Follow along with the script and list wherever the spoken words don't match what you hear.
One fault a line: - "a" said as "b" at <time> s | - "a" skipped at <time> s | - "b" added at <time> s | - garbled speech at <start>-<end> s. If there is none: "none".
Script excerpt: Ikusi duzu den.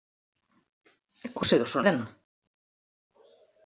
none